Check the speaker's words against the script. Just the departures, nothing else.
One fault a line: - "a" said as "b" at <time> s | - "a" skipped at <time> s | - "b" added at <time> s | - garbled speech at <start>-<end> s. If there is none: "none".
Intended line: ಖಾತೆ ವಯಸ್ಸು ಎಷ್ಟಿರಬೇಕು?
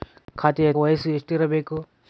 none